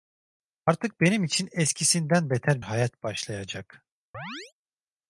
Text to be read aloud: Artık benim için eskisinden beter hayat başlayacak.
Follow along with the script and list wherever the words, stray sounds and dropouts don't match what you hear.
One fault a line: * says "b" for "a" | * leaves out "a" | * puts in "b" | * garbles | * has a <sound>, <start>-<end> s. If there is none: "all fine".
* has a chirp, 4.1-4.5 s